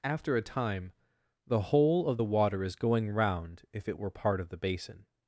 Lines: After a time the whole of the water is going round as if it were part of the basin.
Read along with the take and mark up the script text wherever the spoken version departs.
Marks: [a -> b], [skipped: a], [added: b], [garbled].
After a time the whole of the water is going round [skipped: as] if it were part of the basin.